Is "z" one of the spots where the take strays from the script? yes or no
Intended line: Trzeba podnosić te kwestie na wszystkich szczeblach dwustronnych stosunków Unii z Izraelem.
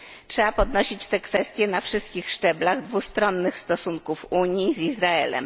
no